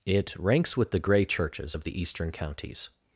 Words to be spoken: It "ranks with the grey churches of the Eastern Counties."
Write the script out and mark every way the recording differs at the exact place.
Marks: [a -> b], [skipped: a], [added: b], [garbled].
It "ranks with the grey churches of the Eastern Counties."